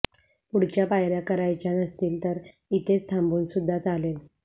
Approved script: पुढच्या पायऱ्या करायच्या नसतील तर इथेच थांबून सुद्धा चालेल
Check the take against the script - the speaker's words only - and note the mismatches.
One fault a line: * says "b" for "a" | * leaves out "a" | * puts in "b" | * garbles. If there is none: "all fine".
all fine